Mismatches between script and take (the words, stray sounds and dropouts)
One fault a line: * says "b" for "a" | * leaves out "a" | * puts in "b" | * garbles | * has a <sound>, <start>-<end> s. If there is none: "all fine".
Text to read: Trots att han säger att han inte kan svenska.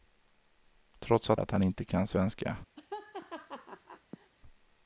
* leaves out "han säger"
* has a laugh, 2.8-4.3 s